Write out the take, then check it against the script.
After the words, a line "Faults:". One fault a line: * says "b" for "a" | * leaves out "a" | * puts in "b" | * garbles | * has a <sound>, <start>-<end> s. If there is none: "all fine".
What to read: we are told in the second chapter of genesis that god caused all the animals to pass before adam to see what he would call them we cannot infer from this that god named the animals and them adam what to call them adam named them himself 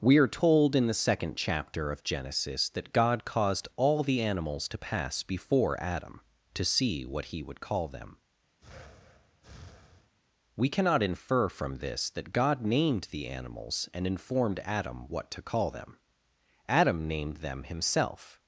we are told in the second chapter of genesis that god caused all the animals to pass before adam to see what he would call them we cannot infer from this that god named the animals and informed adam what to call them adam named them himself
Faults:
* has a breath, 8.6-10.1 s
* says "informed" for "them"